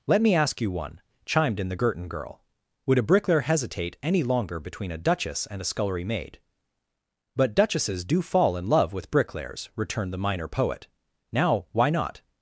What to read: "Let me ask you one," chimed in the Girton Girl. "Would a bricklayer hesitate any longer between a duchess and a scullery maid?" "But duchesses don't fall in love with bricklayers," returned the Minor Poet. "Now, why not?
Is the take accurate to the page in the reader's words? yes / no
no